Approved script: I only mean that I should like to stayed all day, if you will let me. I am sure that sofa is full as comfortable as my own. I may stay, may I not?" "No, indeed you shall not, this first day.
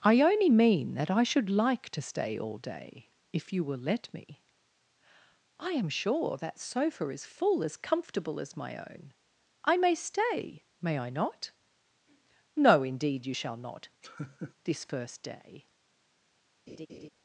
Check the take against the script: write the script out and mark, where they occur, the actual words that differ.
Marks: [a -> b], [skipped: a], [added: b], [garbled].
I only mean that I should like to [stayed -> stay] all day, if you will let me. I am sure that sofa is full as comfortable as my own. I may stay, may I not?" "No, indeed you shall not, this first day.